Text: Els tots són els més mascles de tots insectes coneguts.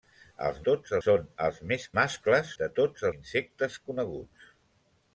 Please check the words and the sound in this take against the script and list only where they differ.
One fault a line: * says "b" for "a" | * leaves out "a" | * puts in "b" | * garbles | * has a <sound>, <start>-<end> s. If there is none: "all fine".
all fine